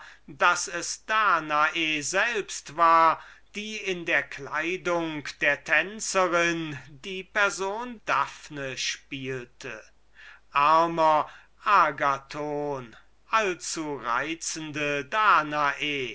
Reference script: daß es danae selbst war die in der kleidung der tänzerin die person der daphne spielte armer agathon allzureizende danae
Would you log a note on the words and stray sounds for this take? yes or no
yes